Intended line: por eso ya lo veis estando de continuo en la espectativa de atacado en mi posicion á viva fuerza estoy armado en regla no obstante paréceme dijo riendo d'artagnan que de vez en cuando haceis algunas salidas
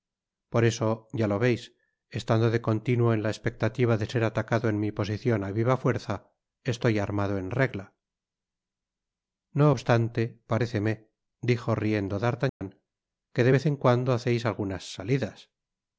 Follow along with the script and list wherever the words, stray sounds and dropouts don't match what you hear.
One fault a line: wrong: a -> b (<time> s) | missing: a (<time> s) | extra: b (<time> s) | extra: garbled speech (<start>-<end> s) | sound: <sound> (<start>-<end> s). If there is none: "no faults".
extra: ser (4.1 s)
sound: dropout (12.5-12.6 s)